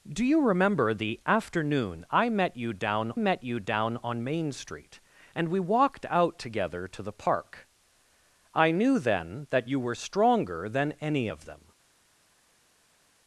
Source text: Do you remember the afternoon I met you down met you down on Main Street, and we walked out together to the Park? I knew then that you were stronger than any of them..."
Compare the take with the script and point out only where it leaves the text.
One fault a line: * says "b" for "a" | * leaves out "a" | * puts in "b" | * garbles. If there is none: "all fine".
all fine